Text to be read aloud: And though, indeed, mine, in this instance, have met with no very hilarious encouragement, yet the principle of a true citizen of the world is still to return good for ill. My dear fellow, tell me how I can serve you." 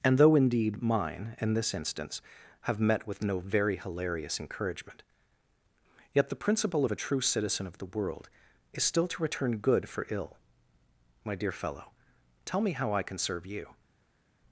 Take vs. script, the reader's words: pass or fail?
pass